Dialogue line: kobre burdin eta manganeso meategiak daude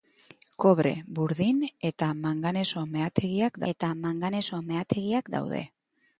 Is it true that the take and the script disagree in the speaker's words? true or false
true